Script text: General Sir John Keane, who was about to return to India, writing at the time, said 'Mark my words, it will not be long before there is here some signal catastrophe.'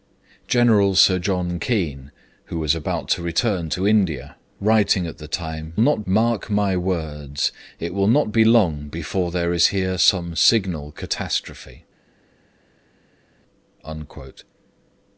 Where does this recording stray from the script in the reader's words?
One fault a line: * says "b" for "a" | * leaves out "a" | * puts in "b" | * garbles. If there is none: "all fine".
* says "not" for "said"